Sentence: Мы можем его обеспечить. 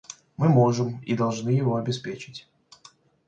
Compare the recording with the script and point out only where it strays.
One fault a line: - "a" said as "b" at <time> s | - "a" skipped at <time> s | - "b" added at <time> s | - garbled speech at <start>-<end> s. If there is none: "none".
- "и должны" added at 1.0 s